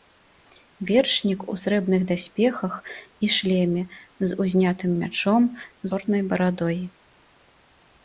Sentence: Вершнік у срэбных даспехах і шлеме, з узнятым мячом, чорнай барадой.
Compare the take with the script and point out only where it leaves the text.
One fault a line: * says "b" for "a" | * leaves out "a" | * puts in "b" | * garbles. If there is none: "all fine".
all fine